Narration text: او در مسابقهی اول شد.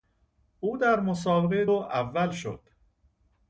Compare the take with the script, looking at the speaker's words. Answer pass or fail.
pass